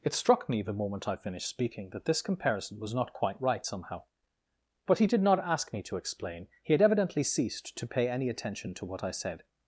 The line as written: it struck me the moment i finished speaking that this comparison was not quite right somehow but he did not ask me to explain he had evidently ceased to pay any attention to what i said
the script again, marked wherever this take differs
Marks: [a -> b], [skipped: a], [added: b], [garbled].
it struck me the moment i finished speaking that this comparison was not quite right somehow but he did not ask me to explain he had evidently ceased to pay any attention to what i said